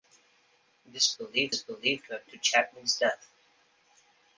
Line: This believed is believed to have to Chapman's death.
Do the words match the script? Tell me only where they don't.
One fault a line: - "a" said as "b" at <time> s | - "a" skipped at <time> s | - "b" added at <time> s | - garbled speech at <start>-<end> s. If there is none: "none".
none